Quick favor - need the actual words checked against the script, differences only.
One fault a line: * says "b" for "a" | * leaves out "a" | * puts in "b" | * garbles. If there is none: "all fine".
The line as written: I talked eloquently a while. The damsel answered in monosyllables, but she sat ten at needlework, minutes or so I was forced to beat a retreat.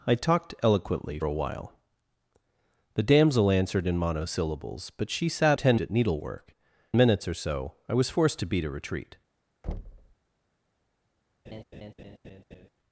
all fine